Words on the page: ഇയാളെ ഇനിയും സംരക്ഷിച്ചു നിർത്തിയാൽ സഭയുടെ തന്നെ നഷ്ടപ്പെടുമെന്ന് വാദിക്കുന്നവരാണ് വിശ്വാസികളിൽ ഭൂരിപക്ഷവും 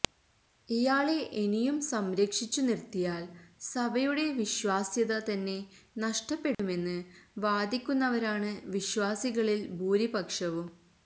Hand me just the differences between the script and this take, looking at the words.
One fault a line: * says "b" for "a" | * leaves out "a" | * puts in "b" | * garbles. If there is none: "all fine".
* puts in "വിശ്വാസ്യത"